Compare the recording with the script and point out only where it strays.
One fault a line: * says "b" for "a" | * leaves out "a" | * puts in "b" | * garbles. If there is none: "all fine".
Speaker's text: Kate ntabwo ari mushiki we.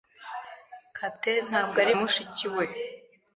all fine